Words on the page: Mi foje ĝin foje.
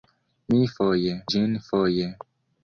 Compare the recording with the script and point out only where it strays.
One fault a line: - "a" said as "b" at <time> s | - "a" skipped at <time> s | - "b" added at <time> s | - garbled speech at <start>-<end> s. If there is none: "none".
none